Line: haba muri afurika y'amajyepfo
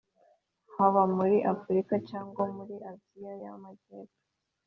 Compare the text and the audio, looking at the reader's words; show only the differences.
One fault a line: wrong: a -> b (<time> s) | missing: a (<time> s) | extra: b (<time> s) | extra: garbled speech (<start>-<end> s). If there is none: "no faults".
extra: cyangwa muri aziya (2.1 s)